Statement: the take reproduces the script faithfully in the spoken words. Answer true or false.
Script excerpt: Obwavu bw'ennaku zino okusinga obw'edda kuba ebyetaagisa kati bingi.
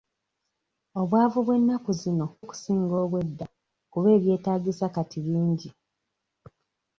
true